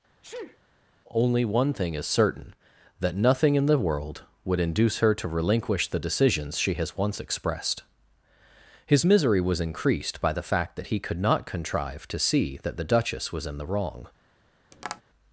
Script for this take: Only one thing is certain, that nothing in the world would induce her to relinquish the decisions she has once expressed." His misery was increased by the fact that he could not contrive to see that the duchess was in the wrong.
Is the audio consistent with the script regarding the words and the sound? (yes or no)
no